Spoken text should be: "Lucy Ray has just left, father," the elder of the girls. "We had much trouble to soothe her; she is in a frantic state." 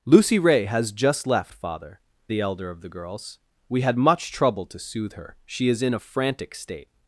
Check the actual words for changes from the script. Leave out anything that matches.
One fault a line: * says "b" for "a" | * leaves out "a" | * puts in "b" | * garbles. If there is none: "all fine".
all fine